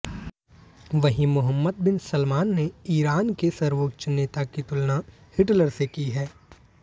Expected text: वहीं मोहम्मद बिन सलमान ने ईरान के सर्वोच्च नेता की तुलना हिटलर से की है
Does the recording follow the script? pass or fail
pass